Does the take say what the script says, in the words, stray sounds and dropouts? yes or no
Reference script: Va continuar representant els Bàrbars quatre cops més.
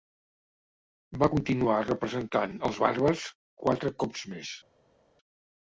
yes